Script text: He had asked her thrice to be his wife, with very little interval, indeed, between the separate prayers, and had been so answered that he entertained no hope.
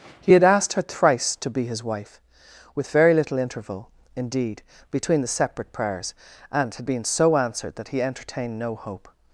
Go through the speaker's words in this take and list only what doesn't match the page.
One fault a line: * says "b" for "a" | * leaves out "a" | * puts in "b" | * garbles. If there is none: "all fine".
all fine